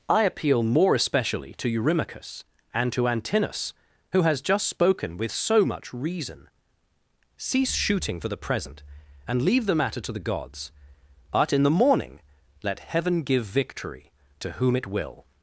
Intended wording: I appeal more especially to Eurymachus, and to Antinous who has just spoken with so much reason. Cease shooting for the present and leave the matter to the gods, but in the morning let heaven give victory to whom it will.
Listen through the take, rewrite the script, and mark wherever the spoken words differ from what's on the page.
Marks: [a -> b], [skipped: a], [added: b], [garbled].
I appeal more especially to Eurymachus, and to Antinous who has just spoken with so much reason. Cease shooting for the present and leave the matter to the gods, but in the morning let heaven give victory to whom it will.